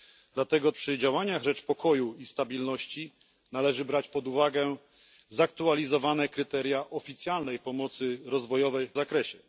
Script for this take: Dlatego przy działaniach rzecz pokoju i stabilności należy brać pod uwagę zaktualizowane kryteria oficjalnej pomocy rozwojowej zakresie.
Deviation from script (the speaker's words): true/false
false